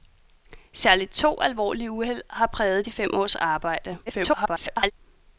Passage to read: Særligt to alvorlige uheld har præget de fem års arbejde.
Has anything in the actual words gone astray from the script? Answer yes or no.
yes